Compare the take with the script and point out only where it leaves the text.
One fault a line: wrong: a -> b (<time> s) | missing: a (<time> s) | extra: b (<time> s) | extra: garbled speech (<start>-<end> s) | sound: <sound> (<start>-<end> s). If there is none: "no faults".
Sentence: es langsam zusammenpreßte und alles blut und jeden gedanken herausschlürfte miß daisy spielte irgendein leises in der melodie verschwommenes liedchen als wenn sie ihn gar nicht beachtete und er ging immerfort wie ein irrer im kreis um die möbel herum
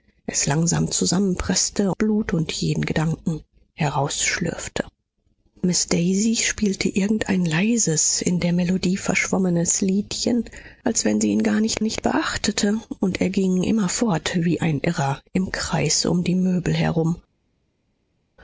missing: und alles (1.9 s)
extra: nicht (11.8 s)